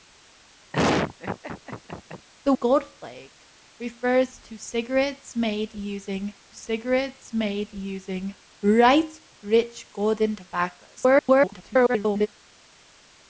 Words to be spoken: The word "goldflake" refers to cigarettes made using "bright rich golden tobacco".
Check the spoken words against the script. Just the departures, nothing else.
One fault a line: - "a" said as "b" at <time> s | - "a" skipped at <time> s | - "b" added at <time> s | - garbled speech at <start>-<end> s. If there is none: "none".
- "word" skipped at 2.5 s
- "cigarettes made using" added at 6.5 s
- garbled speech at 11.0-12.3 s